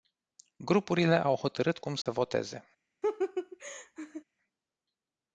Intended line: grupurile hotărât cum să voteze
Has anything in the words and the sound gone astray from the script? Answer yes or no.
yes